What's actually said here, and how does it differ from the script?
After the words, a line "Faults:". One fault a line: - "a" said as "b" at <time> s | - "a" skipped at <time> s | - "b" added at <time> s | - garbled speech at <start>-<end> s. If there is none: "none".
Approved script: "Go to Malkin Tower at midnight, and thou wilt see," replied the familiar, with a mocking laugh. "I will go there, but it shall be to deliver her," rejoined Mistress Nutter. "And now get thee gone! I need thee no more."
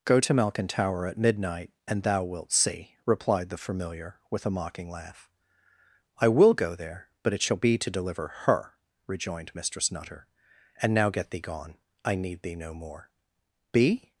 "Go to Malkin Tower at midnight, and thou wilt see," replied the familiar, with a mocking laugh. "I will go there, but it shall be to deliver her," rejoined Mistress Nutter. "And now get thee gone! I need thee no more." "Be
Faults:
- "Be" added at 13.7 s